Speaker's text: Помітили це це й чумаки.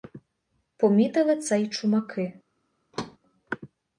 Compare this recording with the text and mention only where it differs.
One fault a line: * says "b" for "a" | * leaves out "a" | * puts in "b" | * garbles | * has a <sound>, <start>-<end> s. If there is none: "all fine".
* leaves out "це"
* has a thud, 2.9-3.2 s